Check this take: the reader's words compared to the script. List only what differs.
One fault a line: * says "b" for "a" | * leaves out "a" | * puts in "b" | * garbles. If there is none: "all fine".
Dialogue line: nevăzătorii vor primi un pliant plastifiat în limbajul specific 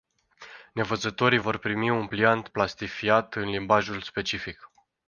all fine